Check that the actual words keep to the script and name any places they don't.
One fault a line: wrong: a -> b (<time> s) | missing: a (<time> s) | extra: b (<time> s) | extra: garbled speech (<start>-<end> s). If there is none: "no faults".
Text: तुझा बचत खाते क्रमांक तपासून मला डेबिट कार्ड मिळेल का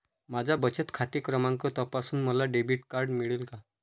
wrong: तुझा -> माझा (0.3 s)